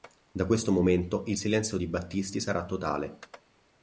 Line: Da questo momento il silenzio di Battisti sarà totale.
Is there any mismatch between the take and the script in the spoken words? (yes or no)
no